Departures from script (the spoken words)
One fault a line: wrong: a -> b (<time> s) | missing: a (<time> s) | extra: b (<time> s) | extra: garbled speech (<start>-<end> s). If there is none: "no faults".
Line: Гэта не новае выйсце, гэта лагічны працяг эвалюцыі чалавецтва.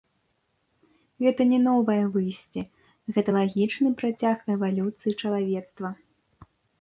no faults